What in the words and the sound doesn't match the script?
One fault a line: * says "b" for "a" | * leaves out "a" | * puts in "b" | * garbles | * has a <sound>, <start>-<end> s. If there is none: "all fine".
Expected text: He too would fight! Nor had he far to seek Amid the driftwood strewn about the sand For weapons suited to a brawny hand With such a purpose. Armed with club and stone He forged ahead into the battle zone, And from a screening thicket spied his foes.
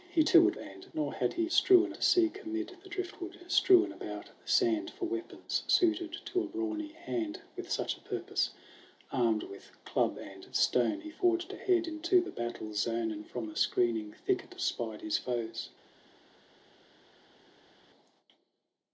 * says "and" for "fight"
* says "strewn" for "far"